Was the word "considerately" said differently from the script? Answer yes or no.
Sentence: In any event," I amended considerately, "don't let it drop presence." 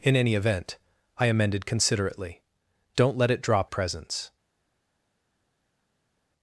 no